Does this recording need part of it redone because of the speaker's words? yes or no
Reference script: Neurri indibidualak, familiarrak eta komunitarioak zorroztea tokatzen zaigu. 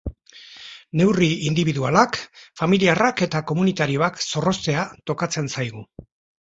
no